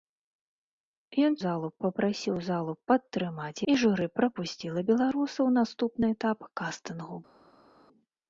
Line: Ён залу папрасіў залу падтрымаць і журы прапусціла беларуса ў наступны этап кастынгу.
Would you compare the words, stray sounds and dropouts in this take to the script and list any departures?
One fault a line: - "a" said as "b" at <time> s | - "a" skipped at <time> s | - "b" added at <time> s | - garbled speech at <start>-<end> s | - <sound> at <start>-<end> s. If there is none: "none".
none